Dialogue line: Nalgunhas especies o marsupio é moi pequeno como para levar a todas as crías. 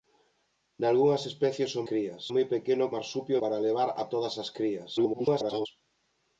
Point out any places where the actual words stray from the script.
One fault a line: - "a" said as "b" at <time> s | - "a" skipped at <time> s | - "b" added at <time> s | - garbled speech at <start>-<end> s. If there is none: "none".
- "marsupio" said as "crías" at 1.9 s
- "como" said as "marsupio" at 3.0 s
- garbled speech at 5.0-5.7 s